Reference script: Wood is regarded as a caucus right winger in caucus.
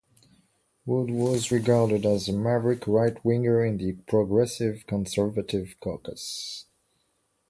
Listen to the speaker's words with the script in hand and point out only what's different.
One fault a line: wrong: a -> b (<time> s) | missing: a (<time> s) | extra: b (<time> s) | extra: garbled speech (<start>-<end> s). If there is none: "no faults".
wrong: is -> was (1.1 s)
wrong: caucus -> maverick (2.3 s)
extra: the Progressive Conservative (3.8 s)